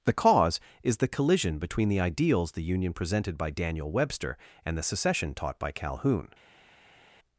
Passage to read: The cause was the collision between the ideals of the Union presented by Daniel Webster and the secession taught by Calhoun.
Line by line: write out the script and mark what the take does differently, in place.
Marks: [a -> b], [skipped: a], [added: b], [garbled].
The cause [was -> is] the collision between the ideals [skipped: of] the Union presented by Daniel Webster and the secession taught by Calhoun.